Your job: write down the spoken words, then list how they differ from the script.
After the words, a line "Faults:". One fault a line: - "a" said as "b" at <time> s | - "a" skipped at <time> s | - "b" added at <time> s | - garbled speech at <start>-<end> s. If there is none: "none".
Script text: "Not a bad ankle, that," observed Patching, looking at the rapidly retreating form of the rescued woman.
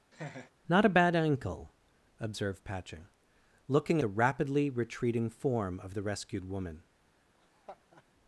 "Not a bad ankle," observed Patching, looking the rapidly retreating form of the rescued woman.
Faults:
- "that" skipped at 1.8 s
- "at" skipped at 4.0 s